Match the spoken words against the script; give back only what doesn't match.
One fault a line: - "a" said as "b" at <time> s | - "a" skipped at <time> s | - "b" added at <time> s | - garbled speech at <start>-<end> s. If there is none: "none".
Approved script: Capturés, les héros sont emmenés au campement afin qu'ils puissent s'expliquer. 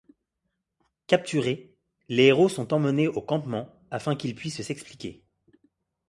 none